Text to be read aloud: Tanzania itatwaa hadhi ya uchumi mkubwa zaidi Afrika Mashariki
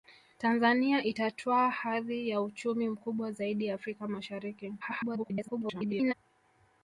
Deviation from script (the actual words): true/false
true